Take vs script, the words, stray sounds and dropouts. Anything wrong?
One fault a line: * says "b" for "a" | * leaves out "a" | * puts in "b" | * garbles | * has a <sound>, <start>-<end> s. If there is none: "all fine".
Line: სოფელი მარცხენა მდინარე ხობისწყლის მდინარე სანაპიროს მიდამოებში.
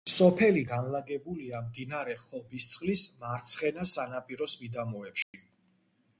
* says "განლაგებულია" for "მარცხენა"
* says "მარცხენა" for "მდინარე"
* has a dropout, 5.2-5.3 s